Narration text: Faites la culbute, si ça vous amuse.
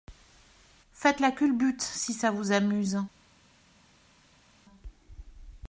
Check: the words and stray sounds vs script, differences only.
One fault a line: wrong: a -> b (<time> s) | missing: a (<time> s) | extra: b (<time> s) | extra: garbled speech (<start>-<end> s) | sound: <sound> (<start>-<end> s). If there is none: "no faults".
no faults